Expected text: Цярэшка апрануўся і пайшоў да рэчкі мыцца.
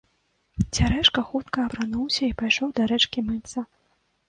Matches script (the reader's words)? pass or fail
fail